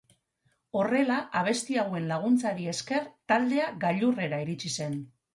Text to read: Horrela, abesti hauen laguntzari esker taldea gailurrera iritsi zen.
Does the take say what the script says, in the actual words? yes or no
yes